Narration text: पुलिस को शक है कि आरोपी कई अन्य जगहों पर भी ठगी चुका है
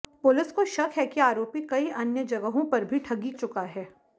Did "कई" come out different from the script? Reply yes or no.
no